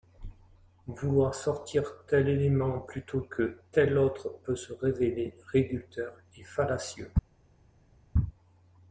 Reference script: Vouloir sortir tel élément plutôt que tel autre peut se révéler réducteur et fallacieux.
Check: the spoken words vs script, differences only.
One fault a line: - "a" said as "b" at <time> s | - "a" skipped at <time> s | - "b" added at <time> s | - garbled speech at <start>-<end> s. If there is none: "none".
none